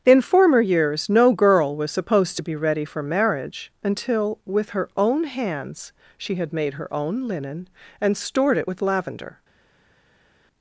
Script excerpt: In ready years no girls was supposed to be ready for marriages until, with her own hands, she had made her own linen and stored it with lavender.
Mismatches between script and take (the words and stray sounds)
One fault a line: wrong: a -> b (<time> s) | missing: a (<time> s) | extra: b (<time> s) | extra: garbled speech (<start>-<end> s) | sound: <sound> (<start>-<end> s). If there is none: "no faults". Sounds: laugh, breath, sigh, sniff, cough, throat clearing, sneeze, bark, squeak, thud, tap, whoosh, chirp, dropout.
wrong: ready -> former (0.2 s)
wrong: girls -> girl (1.3 s)
wrong: marriages -> marriage (3.0 s)